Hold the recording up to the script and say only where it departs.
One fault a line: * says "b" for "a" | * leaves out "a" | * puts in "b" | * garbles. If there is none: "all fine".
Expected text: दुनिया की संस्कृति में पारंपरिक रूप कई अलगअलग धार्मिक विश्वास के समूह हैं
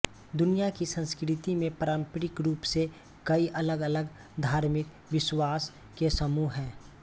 * puts in "से"